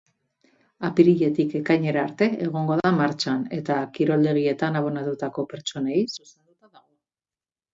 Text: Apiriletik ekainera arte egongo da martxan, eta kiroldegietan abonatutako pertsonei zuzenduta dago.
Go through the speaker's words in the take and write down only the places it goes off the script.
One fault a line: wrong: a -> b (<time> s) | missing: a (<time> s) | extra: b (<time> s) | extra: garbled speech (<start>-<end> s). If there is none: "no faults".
no faults